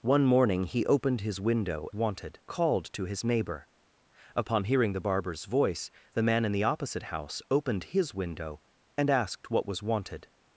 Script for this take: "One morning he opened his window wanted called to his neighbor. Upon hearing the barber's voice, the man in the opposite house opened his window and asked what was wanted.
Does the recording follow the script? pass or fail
pass